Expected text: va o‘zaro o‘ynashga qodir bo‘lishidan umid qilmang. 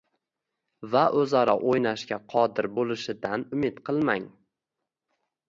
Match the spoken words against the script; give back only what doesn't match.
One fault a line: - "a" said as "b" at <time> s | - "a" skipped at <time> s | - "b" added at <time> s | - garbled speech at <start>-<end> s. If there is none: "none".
none